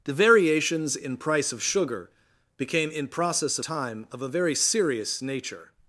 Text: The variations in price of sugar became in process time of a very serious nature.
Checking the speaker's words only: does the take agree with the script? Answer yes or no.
yes